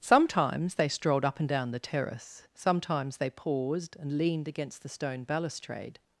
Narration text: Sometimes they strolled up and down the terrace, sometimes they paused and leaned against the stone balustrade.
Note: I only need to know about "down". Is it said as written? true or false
true